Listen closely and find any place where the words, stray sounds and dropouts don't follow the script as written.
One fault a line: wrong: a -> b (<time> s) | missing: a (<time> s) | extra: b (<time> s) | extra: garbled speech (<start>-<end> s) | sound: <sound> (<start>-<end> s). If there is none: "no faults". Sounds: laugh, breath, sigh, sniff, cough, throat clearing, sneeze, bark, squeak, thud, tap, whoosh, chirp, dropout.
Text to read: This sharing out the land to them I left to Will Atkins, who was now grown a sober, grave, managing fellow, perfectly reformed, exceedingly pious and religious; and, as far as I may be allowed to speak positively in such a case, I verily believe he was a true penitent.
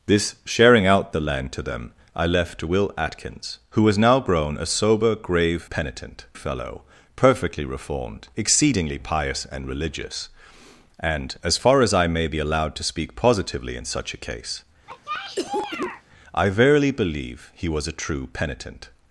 wrong: managing -> penitent (5.7 s)
sound: cough (14.9-16.0 s)